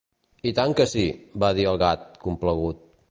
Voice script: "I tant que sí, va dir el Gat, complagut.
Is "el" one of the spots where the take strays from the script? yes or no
no